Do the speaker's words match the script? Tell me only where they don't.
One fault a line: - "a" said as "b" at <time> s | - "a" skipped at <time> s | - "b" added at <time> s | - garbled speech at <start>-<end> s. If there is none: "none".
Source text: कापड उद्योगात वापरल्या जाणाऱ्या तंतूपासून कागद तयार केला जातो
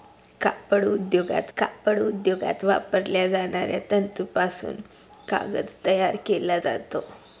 - "कापड उद्योगात" added at 1.6 s